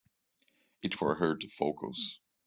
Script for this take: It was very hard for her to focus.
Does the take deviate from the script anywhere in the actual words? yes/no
yes